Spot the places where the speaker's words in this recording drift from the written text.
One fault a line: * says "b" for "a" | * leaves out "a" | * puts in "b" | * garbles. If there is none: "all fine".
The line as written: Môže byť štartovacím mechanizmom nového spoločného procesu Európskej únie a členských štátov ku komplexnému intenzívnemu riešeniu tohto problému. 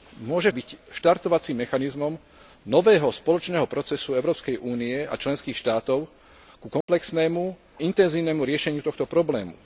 all fine